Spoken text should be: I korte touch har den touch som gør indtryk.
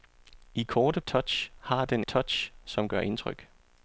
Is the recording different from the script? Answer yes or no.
no